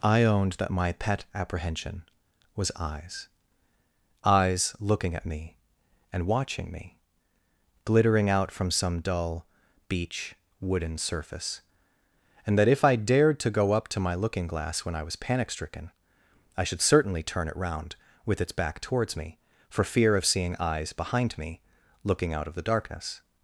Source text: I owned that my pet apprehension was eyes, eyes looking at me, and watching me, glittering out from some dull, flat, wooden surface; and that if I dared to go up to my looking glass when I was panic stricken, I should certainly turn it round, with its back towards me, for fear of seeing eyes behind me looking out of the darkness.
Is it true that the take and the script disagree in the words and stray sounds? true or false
true